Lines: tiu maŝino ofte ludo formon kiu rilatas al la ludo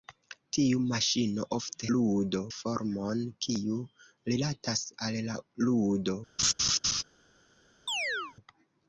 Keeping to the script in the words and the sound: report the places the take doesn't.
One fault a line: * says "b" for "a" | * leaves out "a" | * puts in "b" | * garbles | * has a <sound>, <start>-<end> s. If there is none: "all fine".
* has a laugh, 6.4-7.0 s
* has a chirp, 7.9-8.4 s